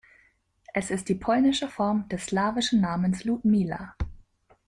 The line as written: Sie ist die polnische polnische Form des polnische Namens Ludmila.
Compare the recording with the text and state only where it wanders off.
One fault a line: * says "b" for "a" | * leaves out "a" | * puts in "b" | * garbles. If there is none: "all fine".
* says "Es" for "Sie"
* leaves out "polnische"
* says "slawischen" for "polnische"